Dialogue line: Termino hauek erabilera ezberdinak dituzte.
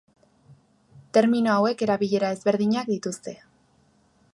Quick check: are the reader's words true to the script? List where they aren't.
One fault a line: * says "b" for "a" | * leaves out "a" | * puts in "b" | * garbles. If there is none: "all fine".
all fine